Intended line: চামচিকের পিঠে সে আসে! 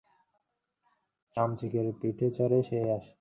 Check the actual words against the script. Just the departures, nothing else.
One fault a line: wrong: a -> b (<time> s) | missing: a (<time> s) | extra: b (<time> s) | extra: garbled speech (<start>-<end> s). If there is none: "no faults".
extra: চড়ে (2.4 s)